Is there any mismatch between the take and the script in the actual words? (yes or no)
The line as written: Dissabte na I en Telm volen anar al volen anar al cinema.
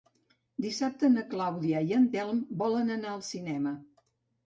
yes